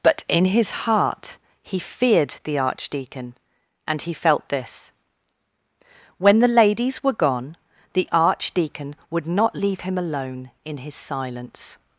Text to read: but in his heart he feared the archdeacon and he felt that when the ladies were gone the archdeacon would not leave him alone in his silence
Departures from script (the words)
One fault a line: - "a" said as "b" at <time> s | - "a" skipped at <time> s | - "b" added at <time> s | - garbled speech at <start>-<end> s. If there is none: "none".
- "that" said as "this" at 4.5 s